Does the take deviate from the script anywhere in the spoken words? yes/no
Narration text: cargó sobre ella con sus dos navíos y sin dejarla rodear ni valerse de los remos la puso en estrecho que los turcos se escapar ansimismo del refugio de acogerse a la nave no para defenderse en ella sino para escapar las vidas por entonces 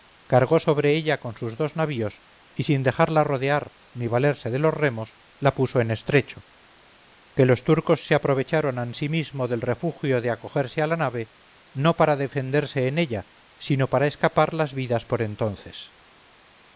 yes